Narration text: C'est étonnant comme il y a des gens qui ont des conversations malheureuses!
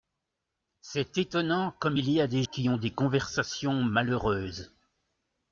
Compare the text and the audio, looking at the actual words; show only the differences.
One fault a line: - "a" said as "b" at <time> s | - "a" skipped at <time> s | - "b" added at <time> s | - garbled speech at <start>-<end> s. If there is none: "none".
- "gens" skipped at 2.4 s